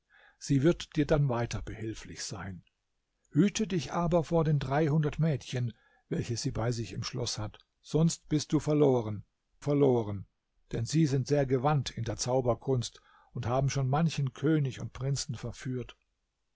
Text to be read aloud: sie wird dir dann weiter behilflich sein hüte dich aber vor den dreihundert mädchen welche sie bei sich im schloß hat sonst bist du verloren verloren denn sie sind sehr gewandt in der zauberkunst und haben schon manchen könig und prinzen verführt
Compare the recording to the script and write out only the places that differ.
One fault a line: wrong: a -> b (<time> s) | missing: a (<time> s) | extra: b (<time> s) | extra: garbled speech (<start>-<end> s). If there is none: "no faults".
no faults